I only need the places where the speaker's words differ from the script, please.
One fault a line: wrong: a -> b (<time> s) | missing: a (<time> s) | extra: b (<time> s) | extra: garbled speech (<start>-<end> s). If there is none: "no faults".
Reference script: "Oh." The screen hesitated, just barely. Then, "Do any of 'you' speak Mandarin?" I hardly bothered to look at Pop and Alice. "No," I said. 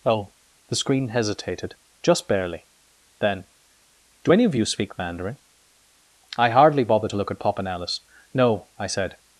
no faults